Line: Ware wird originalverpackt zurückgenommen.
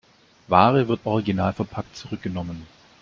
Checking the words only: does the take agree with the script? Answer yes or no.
yes